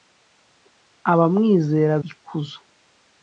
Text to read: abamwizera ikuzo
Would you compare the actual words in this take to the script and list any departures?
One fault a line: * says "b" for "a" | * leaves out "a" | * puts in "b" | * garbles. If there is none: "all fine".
all fine